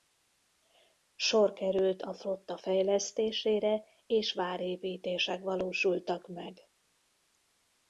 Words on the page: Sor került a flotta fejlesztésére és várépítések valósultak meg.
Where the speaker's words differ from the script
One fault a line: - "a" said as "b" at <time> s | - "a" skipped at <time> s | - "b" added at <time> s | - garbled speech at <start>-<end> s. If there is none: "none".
none